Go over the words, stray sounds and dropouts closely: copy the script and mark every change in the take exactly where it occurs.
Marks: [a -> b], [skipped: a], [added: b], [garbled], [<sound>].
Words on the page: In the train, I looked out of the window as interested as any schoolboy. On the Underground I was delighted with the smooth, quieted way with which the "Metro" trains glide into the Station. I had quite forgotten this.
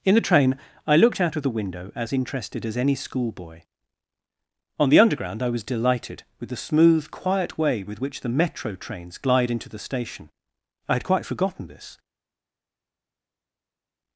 In the train, I looked out of the window as interested as any schoolboy. On the Underground I was delighted with the smooth, [quieted -> quiet] way with which the "Metro" trains glide into the Station. I had quite forgotten this.